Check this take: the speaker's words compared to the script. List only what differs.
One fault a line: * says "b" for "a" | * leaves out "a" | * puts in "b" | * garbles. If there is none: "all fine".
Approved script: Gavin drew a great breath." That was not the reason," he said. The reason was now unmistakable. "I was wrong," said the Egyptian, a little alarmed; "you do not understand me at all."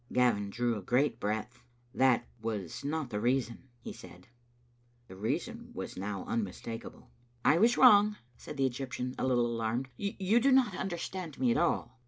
all fine